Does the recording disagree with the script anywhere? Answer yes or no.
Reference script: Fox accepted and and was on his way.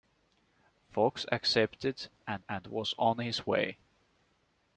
no